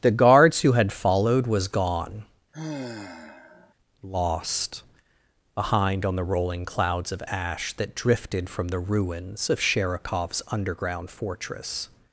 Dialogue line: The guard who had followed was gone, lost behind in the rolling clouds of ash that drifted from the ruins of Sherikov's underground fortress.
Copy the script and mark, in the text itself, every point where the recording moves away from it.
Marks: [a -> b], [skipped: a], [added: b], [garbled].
The [guard -> guards] who had followed was gone, lost behind [in -> on] the rolling clouds of ash that drifted from the ruins of Sherikov's underground fortress.